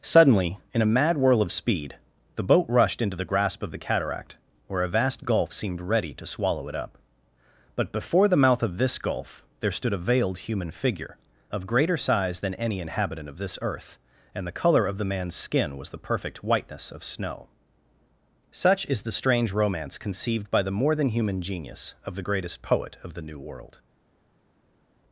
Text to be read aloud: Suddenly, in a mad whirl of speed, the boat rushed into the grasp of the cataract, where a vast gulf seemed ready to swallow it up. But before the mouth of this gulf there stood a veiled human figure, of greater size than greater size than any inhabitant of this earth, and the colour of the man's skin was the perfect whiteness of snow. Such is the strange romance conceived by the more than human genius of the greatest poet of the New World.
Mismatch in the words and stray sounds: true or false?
true